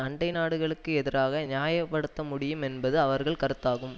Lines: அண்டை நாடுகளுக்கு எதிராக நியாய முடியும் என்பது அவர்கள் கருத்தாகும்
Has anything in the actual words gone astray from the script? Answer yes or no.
yes